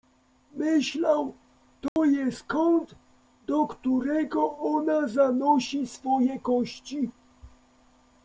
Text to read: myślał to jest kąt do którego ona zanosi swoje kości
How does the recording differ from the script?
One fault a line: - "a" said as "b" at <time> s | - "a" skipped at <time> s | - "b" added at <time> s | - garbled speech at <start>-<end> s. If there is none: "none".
none